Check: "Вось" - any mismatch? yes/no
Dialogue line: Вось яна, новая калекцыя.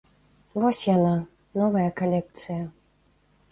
no